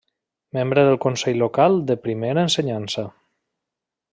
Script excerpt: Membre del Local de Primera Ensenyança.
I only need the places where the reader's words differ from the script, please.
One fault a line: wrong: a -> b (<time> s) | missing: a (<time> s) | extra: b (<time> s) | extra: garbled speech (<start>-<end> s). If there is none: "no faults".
extra: Consell (1.0 s)